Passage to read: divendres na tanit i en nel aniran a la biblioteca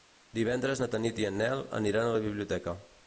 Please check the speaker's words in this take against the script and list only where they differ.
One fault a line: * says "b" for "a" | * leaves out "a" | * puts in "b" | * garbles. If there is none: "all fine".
all fine